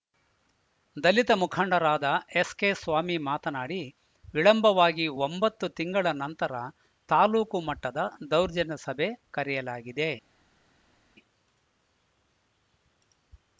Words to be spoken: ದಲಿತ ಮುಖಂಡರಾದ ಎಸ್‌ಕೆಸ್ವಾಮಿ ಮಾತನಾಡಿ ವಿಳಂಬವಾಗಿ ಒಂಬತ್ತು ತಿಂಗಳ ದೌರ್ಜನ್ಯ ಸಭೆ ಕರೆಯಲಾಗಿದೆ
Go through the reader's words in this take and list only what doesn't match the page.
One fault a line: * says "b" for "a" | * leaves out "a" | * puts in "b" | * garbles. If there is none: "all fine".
* puts in "ನಂತರ ತಾಲೂಕು ಮಟ್ಟದ"